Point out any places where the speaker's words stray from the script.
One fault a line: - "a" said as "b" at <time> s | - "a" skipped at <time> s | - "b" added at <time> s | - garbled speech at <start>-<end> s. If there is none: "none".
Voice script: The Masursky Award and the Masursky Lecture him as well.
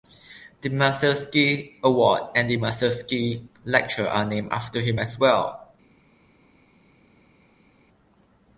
- "are named after" added at 4.1 s